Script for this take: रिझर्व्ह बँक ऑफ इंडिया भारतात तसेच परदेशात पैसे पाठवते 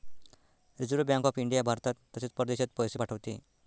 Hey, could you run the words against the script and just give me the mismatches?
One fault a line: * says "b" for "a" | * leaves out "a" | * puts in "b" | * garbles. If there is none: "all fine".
all fine